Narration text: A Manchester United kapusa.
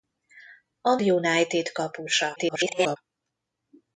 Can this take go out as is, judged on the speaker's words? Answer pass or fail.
fail